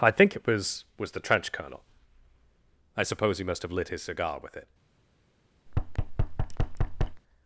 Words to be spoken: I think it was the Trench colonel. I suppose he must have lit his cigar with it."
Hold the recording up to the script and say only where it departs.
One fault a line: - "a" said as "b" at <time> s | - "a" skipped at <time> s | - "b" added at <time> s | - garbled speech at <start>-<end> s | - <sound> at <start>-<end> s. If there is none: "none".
- "was" added at 1.0 s
- thud at 5.7-7.2 s